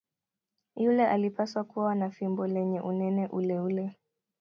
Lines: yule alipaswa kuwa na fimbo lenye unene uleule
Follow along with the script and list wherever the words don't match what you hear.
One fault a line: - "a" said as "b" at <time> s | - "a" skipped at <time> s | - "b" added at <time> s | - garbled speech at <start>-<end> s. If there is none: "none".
none